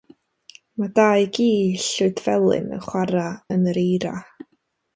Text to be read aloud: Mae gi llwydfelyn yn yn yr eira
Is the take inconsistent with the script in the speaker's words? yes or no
yes